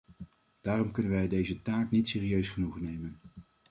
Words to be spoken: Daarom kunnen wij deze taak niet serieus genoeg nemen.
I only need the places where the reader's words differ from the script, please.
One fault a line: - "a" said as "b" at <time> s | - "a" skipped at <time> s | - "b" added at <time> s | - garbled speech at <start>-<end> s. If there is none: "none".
none